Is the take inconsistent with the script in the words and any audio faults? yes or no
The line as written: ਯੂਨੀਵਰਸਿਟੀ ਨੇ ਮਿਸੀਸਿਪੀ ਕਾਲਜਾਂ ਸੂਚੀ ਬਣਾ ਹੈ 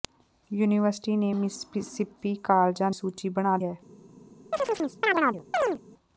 yes